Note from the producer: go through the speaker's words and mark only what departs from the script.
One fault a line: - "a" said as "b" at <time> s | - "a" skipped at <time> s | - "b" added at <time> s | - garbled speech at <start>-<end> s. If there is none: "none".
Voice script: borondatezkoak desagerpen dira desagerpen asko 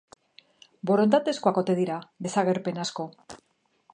- "desagerpen" said as "ote" at 1.6 s